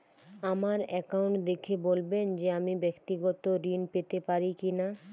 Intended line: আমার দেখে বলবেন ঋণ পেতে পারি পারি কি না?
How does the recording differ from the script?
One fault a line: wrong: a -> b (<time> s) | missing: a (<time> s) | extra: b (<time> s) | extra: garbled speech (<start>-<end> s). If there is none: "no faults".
extra: অ্যাকাউন্ট (0.9 s)
extra: যে আমি ব্যাক্তিগত (2.4 s)
missing: পারি (4.5 s)